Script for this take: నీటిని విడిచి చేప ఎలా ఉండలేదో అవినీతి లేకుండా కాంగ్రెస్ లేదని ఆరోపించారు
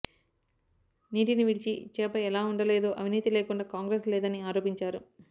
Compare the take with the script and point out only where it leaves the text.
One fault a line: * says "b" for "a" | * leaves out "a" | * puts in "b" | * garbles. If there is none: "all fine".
all fine